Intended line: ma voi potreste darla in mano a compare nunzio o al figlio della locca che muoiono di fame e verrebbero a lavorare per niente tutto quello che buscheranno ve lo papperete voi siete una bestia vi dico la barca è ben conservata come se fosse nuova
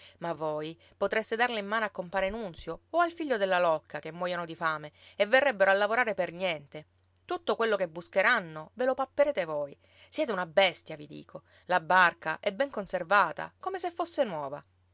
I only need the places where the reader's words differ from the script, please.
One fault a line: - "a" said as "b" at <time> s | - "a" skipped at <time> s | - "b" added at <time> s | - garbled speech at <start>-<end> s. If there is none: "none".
none